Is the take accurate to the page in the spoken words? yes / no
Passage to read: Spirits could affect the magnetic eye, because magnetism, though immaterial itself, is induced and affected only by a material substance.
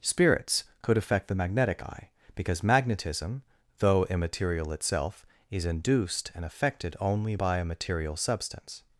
yes